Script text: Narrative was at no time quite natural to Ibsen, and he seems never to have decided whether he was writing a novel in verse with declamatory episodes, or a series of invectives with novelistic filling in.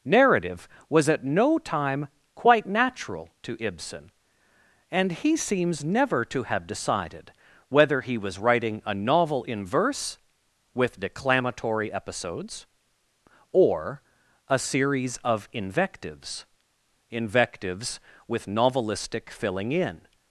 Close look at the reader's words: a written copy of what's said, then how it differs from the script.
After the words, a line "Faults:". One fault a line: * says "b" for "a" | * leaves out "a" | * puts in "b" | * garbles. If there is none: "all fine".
Narrative was at no time quite natural to Ibsen, and he seems never to have decided whether he was writing a novel in verse with declamatory episodes, or a series of invectives invectives with novelistic filling in.
Faults:
* puts in "invectives"